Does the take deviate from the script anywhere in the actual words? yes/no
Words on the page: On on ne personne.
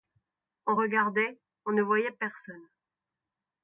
yes